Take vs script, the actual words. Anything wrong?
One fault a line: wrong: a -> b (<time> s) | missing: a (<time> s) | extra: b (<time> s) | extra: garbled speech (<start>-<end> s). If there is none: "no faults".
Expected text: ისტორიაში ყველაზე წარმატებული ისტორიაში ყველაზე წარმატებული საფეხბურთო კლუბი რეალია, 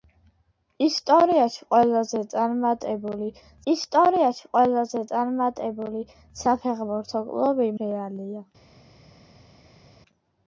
no faults